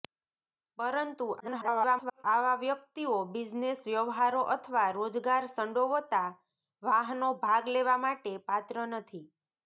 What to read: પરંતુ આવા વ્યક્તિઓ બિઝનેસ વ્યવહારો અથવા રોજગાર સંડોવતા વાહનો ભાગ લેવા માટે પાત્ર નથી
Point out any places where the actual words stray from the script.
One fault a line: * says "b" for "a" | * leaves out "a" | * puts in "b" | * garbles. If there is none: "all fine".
* garbles